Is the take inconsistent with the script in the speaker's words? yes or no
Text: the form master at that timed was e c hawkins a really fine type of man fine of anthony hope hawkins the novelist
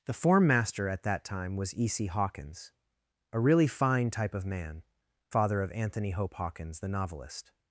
yes